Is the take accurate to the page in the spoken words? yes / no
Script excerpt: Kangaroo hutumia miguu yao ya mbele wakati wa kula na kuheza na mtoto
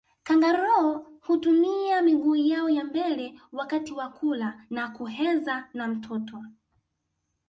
yes